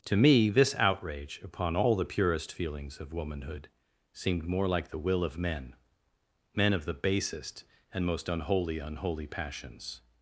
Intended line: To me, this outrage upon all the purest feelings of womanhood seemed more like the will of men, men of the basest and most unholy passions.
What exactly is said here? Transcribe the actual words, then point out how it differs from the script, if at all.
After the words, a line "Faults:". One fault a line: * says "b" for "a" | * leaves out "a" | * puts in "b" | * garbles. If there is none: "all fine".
To me, this outrage upon all the purest feelings of womanhood seemed more like the will of men, men of the basest and most unholy unholy passions.
Faults:
* puts in "unholy"